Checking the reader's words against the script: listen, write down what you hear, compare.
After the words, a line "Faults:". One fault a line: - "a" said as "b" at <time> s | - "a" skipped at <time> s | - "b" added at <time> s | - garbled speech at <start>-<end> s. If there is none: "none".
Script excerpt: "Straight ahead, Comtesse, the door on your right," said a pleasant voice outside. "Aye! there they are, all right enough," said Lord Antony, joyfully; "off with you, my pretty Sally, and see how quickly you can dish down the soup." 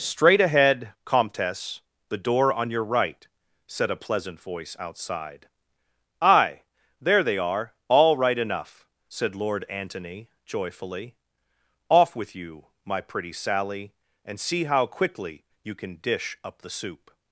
"Straight ahead, Comtesse, the door on your right," said a pleasant voice outside. "Aye! there they are, all right enough," said Lord Antony, joyfully; "off with you, my pretty Sally, and see how quickly you can dish up the soup."
Faults:
- "down" said as "up" at 16.4 s